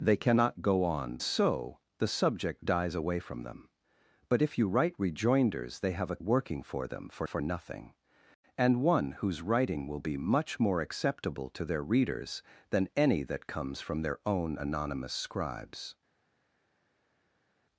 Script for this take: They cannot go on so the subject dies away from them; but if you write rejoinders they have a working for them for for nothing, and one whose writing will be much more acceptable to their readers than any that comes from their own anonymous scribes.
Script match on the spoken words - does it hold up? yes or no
yes